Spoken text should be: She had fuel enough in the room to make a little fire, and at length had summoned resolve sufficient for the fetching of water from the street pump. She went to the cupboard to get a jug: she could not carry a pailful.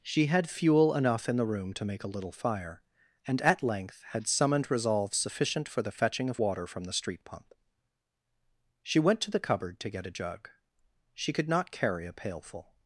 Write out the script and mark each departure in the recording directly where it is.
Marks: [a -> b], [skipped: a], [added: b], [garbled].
She had fuel enough in the room to make a little fire, and at length had summoned resolve sufficient for the fetching of water from the street pump. She went to the cupboard to get a jug: she could not carry a pailful.